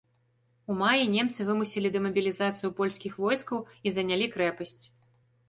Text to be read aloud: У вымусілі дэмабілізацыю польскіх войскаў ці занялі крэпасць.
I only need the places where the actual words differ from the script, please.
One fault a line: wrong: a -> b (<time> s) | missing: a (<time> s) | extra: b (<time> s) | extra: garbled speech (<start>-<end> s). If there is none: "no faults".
extra: маі немцы (0.8 s)
wrong: ці -> і (3.9 s)